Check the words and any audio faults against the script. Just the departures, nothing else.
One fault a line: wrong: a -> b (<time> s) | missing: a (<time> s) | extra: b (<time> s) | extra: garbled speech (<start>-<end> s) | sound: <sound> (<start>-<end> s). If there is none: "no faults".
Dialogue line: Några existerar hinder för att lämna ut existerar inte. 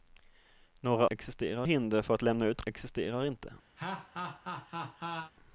sound: laugh (3.8-5.3 s)